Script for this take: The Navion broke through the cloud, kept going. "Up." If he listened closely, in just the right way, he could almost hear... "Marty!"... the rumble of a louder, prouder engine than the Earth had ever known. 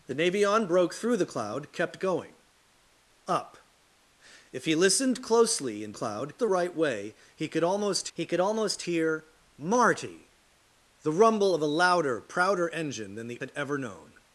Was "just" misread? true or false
true